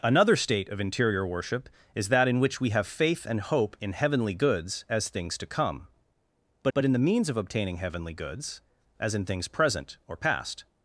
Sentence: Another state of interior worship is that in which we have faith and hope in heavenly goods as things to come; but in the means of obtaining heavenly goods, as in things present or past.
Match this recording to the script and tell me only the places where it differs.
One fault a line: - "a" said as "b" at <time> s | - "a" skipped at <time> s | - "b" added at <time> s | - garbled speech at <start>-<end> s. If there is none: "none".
- "but" added at 6.7 s